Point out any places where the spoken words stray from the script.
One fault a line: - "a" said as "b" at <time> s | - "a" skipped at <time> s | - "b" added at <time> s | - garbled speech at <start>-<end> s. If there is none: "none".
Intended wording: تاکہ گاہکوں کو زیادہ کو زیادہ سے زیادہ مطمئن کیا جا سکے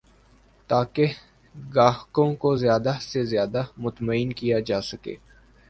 - "کو زیادہ" skipped at 2.9 s